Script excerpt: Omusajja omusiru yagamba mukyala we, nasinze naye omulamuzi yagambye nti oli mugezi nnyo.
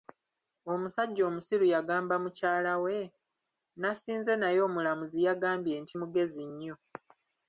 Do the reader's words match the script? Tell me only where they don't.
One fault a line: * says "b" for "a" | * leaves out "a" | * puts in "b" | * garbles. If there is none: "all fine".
* leaves out "oli"